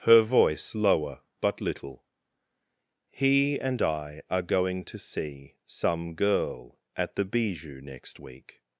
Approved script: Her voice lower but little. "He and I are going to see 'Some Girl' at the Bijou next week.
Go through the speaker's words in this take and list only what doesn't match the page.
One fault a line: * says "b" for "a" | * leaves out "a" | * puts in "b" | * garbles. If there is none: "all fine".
all fine